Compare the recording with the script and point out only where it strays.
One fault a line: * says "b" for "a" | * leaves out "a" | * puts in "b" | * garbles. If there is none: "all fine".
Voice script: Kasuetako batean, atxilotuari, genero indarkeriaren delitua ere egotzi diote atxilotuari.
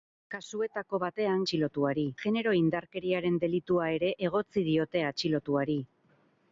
all fine